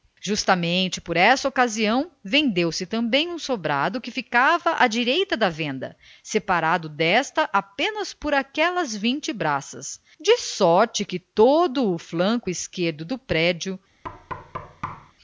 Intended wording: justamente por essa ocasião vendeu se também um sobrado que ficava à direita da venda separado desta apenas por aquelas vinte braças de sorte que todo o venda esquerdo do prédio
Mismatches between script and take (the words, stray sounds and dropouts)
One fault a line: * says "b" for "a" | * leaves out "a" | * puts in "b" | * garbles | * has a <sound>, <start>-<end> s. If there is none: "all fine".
* says "flanco" for "venda"
* has a thud, 14.0-15.1 s